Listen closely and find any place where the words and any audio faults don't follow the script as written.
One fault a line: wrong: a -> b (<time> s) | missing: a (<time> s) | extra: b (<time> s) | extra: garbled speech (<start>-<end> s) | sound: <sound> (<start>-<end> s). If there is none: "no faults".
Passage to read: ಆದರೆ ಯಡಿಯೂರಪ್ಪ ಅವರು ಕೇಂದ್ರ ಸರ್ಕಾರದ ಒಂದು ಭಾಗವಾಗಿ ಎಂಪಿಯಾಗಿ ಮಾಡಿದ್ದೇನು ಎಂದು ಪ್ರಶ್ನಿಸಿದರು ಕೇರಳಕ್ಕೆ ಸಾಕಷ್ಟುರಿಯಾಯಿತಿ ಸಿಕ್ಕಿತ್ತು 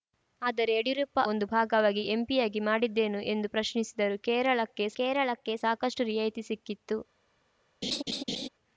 missing: ಅವರು ಕೇಂದ್ರ ಸರ್ಕಾರದ (1.2 s)
extra: ಕೇರಳಕ್ಕೆ (5.0 s)
sound: laugh (7.8-8.5 s)